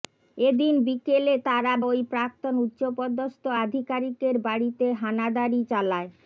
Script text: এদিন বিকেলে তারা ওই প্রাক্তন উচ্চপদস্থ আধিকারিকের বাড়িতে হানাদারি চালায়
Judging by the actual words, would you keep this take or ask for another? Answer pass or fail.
pass